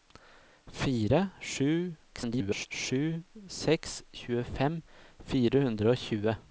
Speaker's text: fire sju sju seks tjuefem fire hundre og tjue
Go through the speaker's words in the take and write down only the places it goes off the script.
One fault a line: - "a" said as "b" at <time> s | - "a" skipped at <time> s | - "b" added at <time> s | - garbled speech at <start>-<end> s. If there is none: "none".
- garbled speech at 2.1-2.7 s